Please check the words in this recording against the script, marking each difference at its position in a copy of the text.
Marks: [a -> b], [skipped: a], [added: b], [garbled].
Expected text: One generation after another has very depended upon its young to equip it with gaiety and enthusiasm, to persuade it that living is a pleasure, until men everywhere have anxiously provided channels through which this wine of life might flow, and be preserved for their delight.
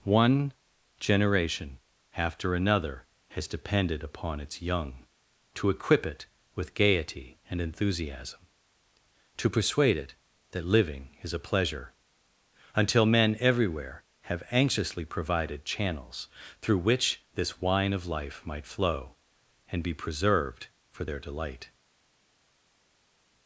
One generation after another has [skipped: very] depended upon its young to equip it with gaiety and enthusiasm, to persuade it that living is a pleasure, until men everywhere have anxiously provided channels through which this wine of life might flow, and be preserved for their delight.